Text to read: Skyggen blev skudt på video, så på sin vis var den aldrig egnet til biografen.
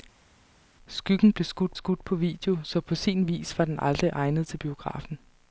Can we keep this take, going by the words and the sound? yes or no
no